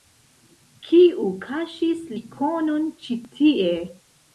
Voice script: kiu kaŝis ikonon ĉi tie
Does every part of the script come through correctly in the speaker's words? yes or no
yes